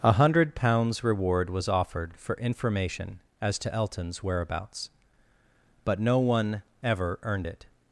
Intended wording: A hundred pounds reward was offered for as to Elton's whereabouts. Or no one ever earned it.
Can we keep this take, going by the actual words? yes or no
no